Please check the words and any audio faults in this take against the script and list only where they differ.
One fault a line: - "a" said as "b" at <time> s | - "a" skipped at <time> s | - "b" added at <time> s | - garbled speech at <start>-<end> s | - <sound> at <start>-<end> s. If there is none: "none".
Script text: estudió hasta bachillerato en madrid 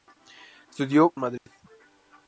- "hasta bachillerato" skipped at 1.1 s
- dropout at 1.4-1.5 s